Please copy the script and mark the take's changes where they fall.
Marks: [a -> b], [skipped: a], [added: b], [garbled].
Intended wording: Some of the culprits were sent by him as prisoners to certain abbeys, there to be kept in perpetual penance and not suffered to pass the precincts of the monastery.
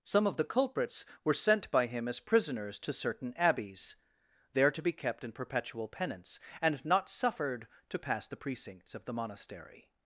Some of the culprits were sent by him as prisoners to certain abbeys, there to be kept in perpetual penance and not suffered to pass the precincts of the monastery.